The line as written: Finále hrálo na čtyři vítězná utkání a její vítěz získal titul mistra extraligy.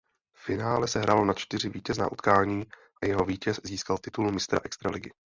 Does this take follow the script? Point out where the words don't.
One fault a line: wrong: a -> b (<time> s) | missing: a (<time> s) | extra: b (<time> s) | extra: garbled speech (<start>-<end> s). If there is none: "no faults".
extra: se (0.9 s)
wrong: její -> jeho (3.0 s)